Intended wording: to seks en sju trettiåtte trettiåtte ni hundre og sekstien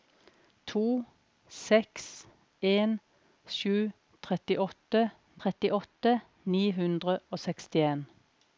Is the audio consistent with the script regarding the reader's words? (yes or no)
yes